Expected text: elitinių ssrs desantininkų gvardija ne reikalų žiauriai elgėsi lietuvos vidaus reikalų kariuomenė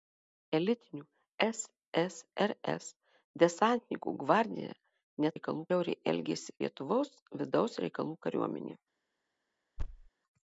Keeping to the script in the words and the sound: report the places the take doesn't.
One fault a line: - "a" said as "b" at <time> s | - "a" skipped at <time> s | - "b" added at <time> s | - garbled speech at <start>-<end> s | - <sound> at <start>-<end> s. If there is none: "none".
- thud at 9.8-10.1 s